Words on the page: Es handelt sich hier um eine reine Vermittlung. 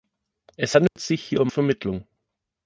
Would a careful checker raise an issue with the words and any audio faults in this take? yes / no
yes